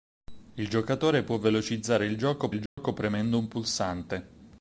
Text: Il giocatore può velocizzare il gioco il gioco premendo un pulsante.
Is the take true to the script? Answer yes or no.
yes